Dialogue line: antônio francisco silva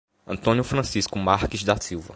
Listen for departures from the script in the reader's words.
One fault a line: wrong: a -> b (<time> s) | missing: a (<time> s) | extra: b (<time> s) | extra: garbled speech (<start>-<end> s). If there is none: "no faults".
extra: marques da (1.2 s)